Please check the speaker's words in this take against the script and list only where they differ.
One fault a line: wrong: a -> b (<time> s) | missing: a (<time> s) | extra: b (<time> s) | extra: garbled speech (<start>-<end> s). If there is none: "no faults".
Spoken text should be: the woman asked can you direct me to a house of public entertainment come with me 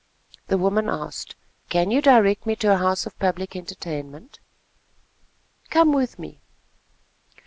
no faults